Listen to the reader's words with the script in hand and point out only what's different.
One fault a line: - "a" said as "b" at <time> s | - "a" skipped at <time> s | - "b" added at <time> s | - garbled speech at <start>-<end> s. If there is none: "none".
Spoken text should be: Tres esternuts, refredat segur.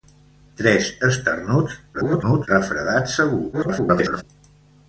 - garbled speech at 1.9-2.5 s
- garbled speech at 3.5-4.2 s